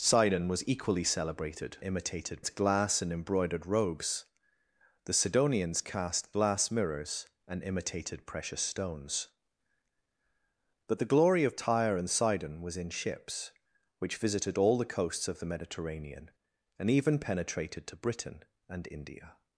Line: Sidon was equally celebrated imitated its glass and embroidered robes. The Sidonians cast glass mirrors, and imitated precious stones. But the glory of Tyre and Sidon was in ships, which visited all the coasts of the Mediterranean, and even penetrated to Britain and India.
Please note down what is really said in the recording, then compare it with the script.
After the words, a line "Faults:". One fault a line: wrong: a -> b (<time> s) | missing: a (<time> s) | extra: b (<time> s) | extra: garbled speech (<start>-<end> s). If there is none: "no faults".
Sidon was equally celebrated imitated its glass and embroidered robes. The Sidonians cast glass mirrors, and imitated precious stones. But the glory of Tyre and Sidon was in ships, which visited all the coasts of the Mediterranean, and even penetrated to Britain and India.
Faults:
no faults